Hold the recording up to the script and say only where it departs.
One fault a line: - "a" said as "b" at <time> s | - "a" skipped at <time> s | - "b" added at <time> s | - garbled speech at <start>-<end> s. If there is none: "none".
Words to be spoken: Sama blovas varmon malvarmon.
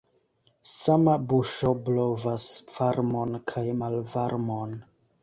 - "buŝo" added at 1.3 s
- "kaj" added at 3.5 s